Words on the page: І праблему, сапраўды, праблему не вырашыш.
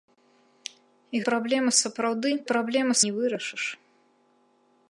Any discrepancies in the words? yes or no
no